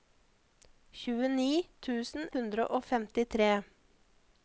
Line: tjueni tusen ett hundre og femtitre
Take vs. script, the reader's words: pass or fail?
fail